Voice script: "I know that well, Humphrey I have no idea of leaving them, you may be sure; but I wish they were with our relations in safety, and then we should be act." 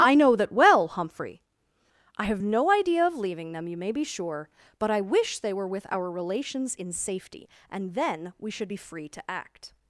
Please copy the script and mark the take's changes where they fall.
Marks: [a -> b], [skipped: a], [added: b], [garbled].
"I know that well, Humphrey I have no idea of leaving them, you may be sure; but I wish they were with our relations in safety, and then we should be [added: free to] act."